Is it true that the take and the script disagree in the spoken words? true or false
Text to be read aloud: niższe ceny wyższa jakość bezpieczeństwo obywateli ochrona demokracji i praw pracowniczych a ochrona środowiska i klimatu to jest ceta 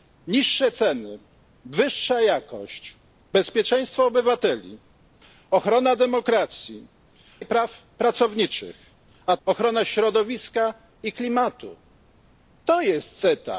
false